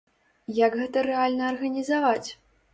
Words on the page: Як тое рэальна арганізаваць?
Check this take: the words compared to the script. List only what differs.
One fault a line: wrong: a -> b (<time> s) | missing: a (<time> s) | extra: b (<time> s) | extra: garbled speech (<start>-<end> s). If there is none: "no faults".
wrong: тое -> гэта (0.8 s)